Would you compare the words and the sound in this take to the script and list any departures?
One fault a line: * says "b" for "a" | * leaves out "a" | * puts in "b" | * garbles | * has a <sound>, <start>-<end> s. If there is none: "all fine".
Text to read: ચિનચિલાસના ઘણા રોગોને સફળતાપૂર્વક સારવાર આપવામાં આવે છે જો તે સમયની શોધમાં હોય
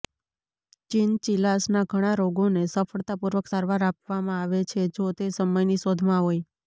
all fine